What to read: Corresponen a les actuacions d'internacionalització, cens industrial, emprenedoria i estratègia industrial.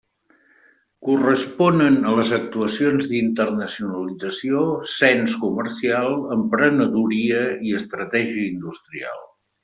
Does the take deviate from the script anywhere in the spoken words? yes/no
yes